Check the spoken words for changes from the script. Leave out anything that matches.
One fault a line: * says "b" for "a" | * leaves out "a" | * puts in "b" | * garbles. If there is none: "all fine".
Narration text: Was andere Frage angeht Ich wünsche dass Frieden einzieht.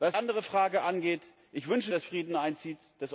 all fine